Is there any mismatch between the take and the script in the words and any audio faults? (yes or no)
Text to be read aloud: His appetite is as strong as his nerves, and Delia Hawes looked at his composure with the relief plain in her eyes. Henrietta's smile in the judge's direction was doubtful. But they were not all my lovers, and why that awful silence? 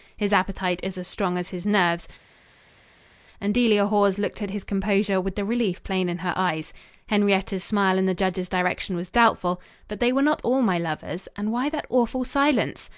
no